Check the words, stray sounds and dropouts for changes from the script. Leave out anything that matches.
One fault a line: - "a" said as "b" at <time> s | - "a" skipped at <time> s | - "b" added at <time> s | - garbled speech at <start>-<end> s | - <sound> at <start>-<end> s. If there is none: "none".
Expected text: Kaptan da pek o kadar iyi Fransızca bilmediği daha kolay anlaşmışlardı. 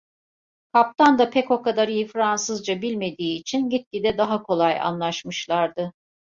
- "için gitgide" added at 3.4 s